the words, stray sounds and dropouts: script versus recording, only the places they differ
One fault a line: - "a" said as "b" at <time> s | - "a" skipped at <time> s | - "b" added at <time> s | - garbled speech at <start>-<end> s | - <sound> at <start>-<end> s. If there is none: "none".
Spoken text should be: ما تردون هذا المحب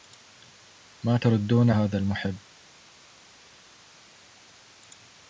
none